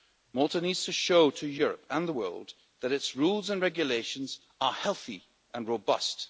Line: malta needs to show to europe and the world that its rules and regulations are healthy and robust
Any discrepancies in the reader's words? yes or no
no